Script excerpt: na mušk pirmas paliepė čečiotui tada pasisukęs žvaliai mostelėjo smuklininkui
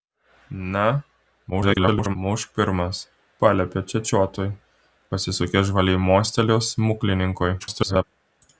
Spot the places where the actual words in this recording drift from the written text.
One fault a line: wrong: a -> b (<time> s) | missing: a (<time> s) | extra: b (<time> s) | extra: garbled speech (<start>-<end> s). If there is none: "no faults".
extra: garbled speech (1.5-2.2 s)
missing: tada (4.5 s)
extra: garbled speech (7.6-8.0 s)